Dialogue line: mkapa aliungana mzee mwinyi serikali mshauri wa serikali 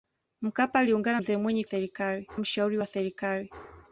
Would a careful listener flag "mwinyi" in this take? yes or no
no